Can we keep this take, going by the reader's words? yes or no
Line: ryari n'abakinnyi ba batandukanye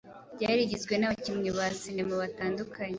no